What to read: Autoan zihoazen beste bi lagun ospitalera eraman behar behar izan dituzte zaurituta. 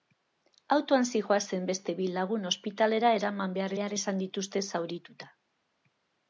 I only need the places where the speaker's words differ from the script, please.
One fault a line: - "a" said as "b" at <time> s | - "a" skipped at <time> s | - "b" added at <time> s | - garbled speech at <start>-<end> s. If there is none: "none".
none